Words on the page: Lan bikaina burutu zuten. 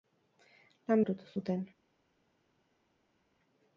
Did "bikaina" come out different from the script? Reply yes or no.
yes